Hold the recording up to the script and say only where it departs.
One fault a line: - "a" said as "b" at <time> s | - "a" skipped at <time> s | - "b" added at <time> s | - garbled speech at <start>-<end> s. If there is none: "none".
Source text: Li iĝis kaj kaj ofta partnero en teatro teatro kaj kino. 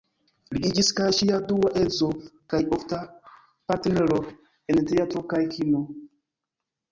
- "ŝia dua edzo" added at 1.2 s
- "teatro" skipped at 5.2 s